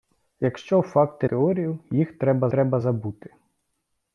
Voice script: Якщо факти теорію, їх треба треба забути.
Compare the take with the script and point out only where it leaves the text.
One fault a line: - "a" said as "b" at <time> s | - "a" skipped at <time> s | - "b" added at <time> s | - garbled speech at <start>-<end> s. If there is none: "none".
none